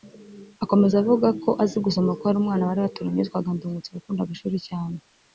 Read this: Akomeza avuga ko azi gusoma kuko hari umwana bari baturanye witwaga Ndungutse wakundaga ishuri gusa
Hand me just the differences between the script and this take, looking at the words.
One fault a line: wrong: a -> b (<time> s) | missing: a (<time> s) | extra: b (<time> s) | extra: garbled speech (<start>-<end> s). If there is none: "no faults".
wrong: gusa -> cyane (4.7 s)